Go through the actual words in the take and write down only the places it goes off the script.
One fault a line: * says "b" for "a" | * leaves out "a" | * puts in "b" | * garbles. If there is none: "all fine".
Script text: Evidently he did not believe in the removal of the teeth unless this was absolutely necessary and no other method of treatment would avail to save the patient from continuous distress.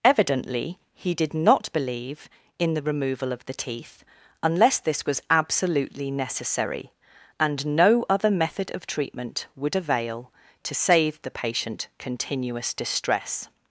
* leaves out "from"